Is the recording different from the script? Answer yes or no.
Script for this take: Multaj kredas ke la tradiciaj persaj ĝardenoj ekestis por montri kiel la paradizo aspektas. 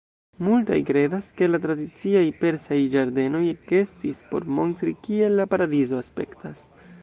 no